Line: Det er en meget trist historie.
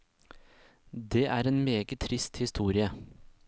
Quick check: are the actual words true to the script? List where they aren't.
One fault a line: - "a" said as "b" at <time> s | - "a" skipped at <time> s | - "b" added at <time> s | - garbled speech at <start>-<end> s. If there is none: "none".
none